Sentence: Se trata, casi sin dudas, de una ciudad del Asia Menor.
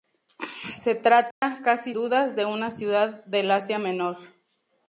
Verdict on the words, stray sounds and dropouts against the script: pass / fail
fail